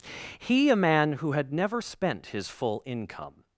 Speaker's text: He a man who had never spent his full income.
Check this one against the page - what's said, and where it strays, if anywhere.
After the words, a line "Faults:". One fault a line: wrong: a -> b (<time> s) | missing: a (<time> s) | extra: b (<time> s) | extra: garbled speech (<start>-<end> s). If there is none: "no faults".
He a man who had never spent his full income.
Faults:
no faults